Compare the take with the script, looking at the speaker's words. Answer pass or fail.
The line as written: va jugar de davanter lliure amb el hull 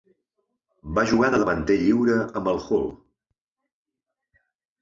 pass